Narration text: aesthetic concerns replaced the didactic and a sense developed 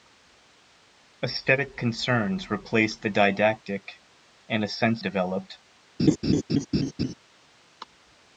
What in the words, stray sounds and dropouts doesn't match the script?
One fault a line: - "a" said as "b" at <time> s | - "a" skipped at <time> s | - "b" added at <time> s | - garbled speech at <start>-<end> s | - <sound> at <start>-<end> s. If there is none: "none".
- laugh at 6.0-7.1 s